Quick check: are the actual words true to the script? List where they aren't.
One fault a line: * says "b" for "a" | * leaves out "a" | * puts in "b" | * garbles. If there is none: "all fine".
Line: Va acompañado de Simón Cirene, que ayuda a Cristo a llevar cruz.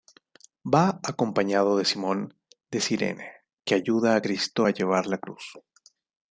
* puts in "de"
* puts in "la"